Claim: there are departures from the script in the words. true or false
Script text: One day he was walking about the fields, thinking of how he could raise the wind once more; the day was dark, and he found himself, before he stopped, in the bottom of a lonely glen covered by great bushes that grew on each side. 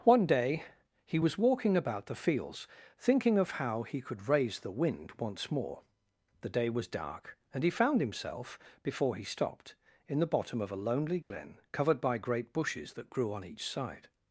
false